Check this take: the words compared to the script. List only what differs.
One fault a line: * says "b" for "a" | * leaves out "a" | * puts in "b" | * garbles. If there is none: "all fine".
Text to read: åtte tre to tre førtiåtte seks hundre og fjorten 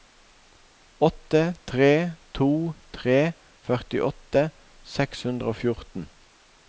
all fine